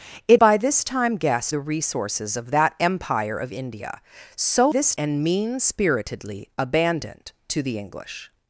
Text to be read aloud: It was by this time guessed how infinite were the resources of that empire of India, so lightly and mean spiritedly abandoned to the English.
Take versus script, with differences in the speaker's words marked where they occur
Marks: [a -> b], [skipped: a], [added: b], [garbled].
It [skipped: was] by this time guessed [skipped: how infinite were] the resources of that empire of India, so [lightly -> this] and mean spiritedly abandoned to the English.